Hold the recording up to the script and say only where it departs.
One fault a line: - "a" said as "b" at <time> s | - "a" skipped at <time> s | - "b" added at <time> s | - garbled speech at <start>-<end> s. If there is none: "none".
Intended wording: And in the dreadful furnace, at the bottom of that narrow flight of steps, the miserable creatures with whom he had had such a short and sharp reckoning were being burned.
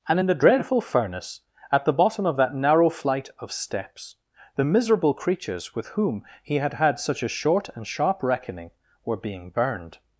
none